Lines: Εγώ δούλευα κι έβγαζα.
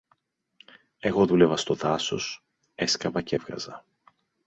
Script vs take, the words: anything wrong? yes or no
yes